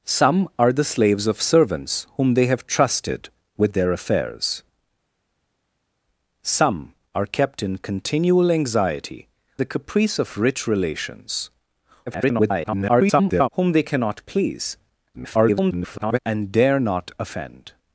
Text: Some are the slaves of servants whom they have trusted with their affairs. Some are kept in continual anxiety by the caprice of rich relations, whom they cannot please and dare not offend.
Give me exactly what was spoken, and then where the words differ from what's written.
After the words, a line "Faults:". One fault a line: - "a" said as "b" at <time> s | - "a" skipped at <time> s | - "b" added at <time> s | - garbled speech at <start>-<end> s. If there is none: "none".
Some are the slaves of servants whom they have trusted with their affairs. Some are kept in continual anxiety the caprice of rich relations, [garbled] whom they cannot please [garbled] and dare not offend.
Faults:
- "by" skipped at 9.3 s
- garbled speech at 12.1-13.5 s
- garbled speech at 15.1-16.2 s